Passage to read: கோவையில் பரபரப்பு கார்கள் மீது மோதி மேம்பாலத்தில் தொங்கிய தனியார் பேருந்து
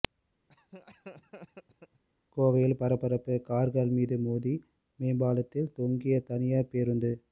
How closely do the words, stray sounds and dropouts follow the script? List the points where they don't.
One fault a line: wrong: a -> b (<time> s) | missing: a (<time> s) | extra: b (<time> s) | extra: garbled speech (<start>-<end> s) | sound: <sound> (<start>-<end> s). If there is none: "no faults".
sound: laugh (0.5-2.0 s)